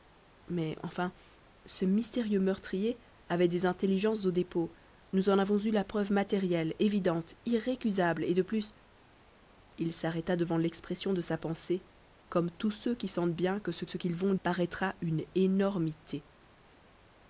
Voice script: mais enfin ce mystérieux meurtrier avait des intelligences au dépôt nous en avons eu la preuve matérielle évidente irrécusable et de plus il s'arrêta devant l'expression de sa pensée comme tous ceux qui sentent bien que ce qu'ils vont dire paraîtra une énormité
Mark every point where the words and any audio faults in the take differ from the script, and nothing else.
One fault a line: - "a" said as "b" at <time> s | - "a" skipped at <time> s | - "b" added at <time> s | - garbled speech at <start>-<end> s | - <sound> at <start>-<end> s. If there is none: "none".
- "ce" added at 13.8 s
- "dire" skipped at 14.3 s